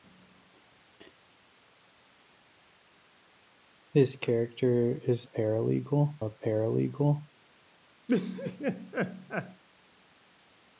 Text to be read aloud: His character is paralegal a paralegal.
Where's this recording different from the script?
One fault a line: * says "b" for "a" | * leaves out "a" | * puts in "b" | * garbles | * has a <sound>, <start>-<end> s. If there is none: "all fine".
* has a laugh, 8.1-9.6 s